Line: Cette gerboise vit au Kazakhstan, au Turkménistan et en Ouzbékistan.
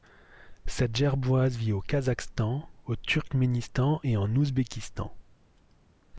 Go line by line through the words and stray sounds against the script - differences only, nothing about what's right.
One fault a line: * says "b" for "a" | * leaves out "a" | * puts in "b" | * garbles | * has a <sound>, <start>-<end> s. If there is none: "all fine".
all fine